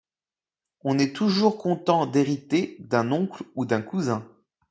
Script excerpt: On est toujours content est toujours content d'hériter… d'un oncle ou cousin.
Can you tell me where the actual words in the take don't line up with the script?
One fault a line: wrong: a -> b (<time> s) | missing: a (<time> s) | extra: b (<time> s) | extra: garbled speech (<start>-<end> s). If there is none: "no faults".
missing: est toujours content (2.1 s)
extra: d'un (3.6 s)